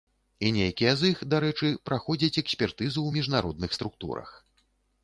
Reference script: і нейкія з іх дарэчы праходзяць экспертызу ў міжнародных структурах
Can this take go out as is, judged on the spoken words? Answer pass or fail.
pass